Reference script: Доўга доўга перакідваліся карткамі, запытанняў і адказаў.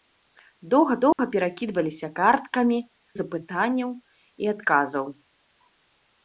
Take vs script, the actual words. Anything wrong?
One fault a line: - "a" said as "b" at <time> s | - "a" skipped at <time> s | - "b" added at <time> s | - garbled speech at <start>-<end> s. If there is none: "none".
none